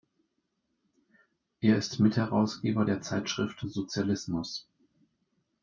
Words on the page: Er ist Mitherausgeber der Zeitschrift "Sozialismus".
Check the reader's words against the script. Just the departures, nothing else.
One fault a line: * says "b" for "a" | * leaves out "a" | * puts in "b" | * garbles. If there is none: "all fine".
all fine